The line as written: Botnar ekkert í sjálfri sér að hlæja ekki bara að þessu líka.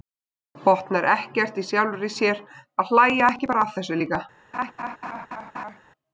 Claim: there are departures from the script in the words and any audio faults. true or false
true